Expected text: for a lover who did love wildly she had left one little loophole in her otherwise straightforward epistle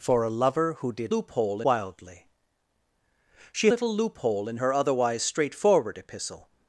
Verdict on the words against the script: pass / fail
fail